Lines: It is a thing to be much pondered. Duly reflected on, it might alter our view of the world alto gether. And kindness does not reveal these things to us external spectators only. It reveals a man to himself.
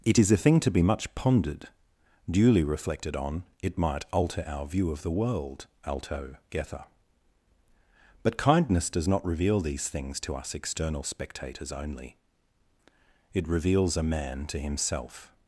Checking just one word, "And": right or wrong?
wrong